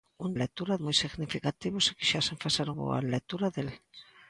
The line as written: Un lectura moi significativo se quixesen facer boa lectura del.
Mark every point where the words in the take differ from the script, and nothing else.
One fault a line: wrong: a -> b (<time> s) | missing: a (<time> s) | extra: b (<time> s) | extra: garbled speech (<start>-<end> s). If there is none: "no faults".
no faults